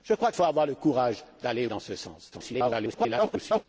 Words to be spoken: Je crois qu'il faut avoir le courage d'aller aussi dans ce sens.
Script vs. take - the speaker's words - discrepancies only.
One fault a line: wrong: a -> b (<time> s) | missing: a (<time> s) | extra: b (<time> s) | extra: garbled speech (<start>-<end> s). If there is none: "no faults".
missing: qu'il (0.3 s)
missing: aussi (1.7 s)
extra: garbled speech (2.3-3.7 s)